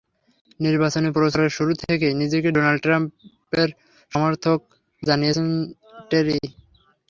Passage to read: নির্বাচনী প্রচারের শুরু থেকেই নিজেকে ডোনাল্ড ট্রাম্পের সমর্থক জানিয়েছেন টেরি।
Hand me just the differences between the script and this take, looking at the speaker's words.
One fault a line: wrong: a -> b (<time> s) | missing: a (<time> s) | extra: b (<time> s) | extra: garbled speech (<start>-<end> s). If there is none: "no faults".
no faults